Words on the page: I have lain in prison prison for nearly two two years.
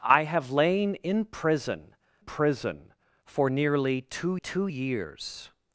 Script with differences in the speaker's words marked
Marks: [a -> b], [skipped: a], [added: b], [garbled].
I have lain in prison prison for nearly two two years.